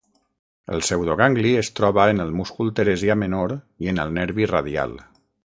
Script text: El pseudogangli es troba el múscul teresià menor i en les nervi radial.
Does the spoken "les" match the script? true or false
false